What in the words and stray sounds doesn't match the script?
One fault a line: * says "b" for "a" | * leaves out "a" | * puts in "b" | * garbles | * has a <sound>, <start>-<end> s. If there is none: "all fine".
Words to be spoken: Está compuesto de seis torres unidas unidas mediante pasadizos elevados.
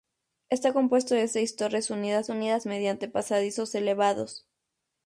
all fine